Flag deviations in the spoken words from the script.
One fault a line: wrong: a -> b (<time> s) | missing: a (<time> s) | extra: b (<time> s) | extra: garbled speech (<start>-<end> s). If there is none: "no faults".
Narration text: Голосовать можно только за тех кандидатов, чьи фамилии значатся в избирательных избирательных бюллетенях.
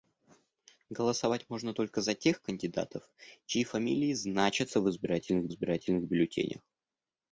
no faults